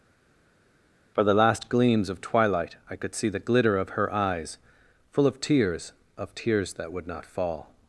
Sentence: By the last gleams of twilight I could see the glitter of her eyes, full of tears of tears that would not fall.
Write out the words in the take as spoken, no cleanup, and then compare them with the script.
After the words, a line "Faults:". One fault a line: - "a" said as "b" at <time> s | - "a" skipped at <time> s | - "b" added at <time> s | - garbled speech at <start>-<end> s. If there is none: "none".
For the last gleams of twilight I could see the glitter of her eyes, full of tears of tears that would not fall.
Faults:
- "By" said as "For" at 1.1 s